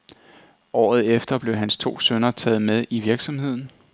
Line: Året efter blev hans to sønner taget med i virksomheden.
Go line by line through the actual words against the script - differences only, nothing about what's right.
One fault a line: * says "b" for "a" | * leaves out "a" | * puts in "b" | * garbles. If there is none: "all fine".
all fine